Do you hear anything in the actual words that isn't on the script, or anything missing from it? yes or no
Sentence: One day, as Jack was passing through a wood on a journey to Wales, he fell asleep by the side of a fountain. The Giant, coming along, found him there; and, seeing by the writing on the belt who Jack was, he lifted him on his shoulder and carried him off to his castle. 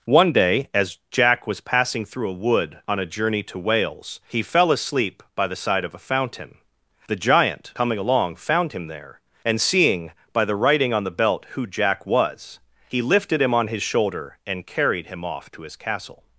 no